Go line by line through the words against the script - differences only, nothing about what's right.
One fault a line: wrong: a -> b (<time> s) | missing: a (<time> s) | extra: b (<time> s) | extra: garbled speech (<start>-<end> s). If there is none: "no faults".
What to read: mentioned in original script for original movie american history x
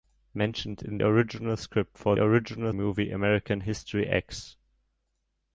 no faults